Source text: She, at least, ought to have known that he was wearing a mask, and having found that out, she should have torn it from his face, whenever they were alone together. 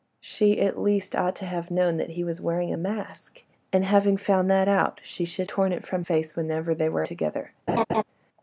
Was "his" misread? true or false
true